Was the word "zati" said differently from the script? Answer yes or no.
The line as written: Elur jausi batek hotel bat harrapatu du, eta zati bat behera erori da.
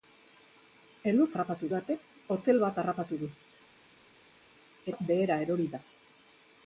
yes